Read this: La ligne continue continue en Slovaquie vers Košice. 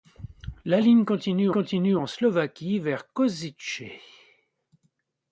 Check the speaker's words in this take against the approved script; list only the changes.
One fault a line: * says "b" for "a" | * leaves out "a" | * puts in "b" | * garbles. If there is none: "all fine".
all fine